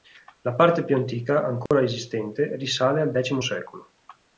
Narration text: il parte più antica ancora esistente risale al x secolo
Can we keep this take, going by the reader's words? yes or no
no